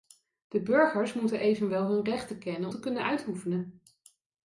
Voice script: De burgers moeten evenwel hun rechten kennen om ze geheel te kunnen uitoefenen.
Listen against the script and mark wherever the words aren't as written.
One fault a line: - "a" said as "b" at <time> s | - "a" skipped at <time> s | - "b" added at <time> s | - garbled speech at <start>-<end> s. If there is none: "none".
- "om ze geheel" skipped at 2.7 s